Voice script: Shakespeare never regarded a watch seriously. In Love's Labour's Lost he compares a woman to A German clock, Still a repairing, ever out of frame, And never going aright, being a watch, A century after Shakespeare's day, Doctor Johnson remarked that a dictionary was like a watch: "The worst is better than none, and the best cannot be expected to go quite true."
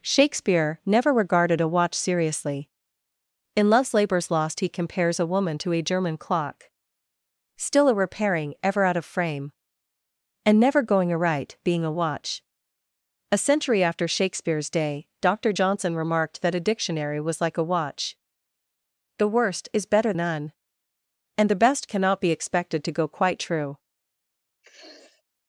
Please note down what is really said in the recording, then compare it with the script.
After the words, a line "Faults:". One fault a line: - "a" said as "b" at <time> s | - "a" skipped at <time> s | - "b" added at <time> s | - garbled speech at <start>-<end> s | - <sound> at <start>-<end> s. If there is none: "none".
Shakespeare never regarded a watch seriously. In Love's Labour's Lost he compares a woman to A German clock, Still a repairing, ever out of frame, And never going aright, being a watch, A century after Shakespeare's day, Doctor Johnson remarked that a dictionary was like a watch: "The worst is better none, and the best cannot be expected to go quite true."
Faults:
- "than" skipped at 20.1 s
- sniff at 24.6-25.2 s